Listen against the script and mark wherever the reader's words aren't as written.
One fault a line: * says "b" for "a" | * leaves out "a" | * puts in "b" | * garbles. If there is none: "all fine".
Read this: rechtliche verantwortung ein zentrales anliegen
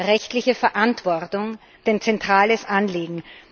all fine